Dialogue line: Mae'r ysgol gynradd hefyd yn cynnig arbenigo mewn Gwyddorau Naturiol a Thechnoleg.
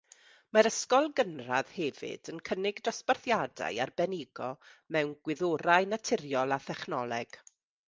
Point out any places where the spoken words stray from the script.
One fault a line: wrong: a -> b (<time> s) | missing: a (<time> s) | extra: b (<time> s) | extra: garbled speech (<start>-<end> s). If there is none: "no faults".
extra: dosbarthiadau (2.9 s)